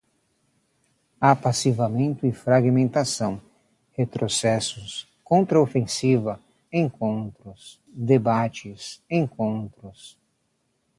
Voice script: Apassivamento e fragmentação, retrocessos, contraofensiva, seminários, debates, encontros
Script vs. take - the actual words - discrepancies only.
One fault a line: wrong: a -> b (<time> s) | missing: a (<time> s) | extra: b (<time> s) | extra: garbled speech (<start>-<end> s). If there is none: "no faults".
wrong: seminários -> encontros (6.7 s)